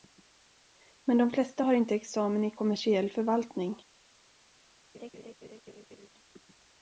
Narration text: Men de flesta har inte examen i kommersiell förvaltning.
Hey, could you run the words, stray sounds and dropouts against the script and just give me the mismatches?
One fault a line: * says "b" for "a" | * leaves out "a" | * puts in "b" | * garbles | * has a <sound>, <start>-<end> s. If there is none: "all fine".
* has a laugh, 4.9-6.1 s